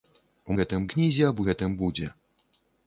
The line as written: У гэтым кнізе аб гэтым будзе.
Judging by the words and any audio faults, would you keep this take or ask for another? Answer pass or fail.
pass